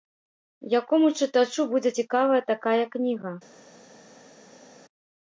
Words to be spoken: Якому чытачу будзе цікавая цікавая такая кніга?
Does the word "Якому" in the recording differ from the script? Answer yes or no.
no